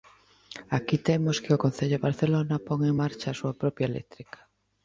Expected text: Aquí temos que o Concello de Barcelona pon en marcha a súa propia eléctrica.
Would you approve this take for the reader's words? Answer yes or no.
yes